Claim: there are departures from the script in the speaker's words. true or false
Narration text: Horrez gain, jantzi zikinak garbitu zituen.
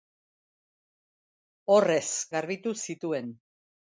true